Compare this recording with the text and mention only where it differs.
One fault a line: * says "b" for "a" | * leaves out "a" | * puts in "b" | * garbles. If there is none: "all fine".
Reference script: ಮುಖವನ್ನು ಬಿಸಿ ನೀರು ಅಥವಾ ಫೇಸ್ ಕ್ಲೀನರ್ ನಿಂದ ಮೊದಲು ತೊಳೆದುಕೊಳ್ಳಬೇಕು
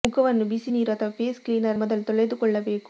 * leaves out "ನಿಂದ"